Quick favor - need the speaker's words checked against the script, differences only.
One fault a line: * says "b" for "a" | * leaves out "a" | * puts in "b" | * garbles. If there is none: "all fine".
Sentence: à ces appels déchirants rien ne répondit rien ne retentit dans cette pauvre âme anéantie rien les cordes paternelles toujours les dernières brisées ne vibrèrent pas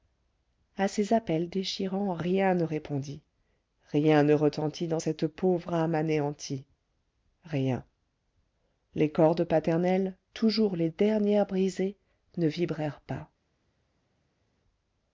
all fine